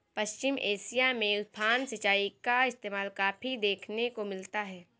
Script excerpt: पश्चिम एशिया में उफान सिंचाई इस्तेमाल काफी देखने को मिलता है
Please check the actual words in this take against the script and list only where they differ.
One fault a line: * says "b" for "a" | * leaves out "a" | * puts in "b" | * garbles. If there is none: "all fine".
* puts in "का"